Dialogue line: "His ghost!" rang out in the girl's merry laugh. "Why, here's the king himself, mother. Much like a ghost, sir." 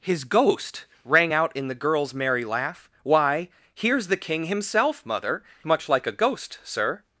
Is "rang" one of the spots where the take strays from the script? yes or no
no